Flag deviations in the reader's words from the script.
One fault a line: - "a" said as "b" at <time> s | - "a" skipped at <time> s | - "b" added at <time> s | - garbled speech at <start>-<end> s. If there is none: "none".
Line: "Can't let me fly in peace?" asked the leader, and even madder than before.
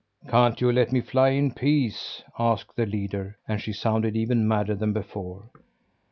- "you" added at 0.6 s
- "she sounded" added at 3.6 s